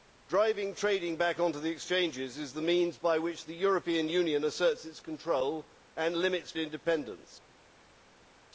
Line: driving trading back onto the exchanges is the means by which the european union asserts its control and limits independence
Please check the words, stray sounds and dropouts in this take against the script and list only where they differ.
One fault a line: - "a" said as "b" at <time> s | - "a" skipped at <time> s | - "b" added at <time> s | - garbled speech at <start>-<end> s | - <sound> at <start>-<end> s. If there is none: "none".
none